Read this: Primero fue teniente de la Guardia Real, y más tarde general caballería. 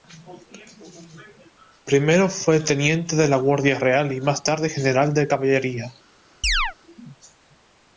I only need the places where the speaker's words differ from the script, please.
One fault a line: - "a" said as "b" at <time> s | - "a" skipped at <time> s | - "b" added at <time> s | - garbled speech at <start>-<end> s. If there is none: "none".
- "de" added at 5.1 s